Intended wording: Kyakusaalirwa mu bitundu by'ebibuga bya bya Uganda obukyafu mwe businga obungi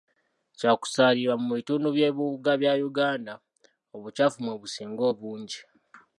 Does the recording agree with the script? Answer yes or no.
no